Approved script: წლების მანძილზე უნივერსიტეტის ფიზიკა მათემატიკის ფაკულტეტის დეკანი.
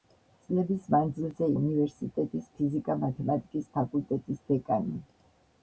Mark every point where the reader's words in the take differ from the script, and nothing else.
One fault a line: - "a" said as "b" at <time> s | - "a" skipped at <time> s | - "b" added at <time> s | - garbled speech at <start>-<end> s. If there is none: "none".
none